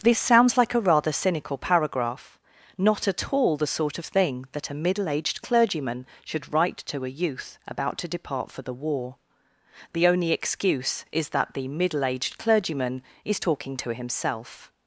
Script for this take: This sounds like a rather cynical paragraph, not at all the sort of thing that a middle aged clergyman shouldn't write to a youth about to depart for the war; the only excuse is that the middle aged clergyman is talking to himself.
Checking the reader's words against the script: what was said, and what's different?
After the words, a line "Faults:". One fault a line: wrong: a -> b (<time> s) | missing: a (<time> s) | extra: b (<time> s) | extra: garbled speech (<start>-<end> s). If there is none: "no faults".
This sounds like a rather cynical paragraph, not at all the sort of thing that a middle aged clergyman should write to a youth about to depart for the war; the only excuse is that the middle aged clergyman is talking to himself.
Faults:
wrong: shouldn't -> should (6.2 s)